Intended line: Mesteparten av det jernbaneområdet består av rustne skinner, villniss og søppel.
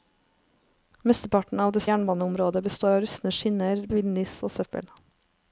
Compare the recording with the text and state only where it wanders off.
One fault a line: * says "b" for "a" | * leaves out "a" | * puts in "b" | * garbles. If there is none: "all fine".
all fine